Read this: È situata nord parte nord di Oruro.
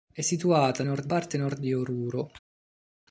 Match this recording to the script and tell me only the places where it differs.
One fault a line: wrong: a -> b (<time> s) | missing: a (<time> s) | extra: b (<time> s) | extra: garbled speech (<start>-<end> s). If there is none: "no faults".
no faults